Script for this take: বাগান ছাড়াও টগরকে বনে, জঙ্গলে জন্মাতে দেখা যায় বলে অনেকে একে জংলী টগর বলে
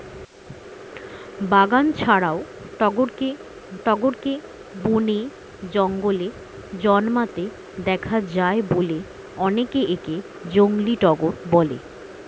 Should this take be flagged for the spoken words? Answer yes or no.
yes